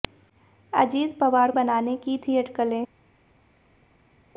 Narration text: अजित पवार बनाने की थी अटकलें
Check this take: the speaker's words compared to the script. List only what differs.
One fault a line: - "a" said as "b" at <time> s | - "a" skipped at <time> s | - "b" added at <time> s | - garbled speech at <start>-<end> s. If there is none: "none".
none